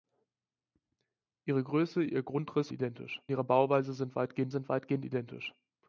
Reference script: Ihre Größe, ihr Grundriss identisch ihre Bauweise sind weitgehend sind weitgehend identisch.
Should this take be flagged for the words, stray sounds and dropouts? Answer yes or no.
no